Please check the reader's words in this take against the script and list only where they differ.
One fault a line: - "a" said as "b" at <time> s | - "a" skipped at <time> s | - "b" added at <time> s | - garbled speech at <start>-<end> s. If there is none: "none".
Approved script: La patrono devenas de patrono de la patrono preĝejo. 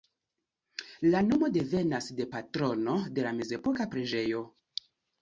- "patrono" said as "nomo" at 1.3 s
- "patrono" said as "mezepoka" at 3.4 s